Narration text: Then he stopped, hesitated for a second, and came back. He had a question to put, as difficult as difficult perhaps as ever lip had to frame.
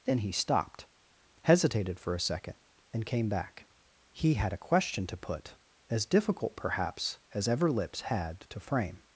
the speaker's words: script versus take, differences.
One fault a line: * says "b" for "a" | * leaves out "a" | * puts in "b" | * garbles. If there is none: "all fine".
* leaves out "as difficult"
* says "lips" for "lip"